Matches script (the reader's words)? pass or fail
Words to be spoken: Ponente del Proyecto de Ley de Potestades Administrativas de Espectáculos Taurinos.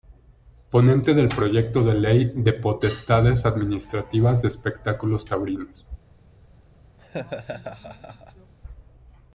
pass